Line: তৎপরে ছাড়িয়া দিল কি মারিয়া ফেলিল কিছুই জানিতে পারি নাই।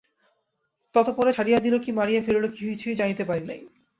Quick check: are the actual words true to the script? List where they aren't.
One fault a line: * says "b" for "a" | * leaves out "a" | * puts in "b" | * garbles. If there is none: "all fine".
all fine